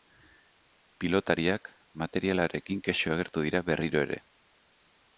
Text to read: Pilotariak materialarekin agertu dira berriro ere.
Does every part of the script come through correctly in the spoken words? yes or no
no